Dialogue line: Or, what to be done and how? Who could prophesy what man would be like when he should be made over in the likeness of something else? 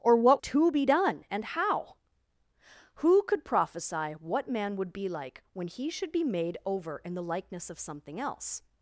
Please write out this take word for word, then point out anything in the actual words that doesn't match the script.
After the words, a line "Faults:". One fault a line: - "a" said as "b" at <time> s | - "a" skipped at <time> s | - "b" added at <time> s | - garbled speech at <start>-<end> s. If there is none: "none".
Or, what to be done and how? Who could prophesy what man would be like when he should be made over in the likeness of something else?
Faults:
none